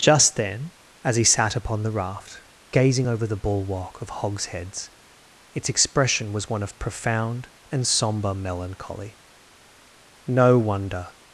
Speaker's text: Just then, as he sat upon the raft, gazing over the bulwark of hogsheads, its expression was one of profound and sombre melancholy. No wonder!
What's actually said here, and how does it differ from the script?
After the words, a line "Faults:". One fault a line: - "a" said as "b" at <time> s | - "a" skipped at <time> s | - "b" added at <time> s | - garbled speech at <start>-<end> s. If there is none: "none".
Just then, as he sat upon the raft, gazing over the bulwark of hogsheads, its expression was one of profound and sombre melancholy. No wonder!
Faults:
none